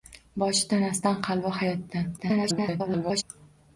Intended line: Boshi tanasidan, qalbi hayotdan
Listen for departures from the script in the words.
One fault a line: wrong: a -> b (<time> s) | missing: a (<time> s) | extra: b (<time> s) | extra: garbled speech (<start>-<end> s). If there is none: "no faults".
extra: garbled speech (2.2-3.2 s)